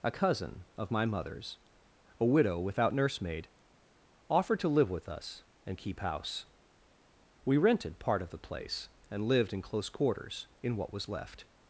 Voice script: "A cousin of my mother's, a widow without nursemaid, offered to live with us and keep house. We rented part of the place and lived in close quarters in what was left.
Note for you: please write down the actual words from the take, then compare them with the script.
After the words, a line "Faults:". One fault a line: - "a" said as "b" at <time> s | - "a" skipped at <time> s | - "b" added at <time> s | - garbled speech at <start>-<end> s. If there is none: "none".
"A cousin of my mother's, a widow without nursemaid, offered to live with us and keep house. We rented part of the place and lived in close quarters in what was left.
Faults:
none